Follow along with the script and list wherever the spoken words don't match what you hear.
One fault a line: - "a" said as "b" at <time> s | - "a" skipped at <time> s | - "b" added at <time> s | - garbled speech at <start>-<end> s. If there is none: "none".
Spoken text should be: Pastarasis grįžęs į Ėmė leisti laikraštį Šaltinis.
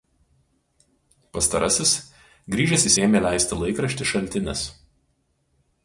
none